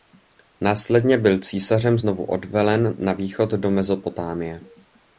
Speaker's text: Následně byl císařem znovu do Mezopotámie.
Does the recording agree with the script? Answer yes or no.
no